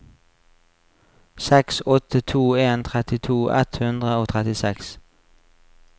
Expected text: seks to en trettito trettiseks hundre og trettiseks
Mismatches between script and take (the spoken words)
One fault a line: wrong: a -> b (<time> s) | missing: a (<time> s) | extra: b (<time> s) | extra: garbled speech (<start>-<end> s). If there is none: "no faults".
extra: åtte (1.9 s)
wrong: trettiseks -> ett (3.6 s)